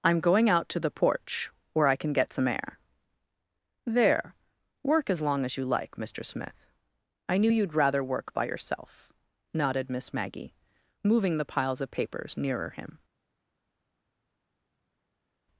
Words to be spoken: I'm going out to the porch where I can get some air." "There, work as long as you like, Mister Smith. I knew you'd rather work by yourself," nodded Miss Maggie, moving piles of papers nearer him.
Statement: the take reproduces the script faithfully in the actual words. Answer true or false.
false